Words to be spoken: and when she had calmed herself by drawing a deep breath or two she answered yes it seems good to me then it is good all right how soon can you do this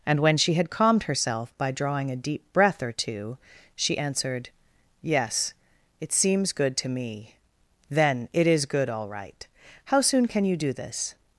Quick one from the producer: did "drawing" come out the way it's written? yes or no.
yes